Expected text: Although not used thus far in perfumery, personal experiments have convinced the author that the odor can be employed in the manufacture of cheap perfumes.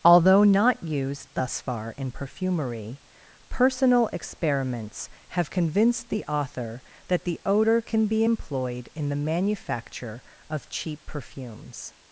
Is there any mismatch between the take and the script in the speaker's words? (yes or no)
no